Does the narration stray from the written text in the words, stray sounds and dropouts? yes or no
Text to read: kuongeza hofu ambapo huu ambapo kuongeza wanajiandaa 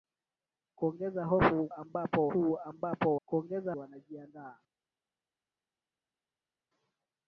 no